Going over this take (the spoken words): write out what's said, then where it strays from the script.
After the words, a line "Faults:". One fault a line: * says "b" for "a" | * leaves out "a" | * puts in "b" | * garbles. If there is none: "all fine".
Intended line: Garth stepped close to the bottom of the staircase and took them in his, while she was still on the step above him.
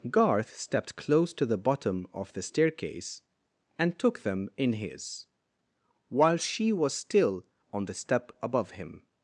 Garth stepped close to the bottom of the staircase and took them in his, while she was still on the step above him.
Faults:
all fine